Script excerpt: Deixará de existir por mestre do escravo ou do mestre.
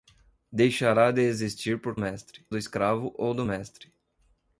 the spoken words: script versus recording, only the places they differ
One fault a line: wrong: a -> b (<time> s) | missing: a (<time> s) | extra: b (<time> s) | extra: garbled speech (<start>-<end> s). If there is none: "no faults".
no faults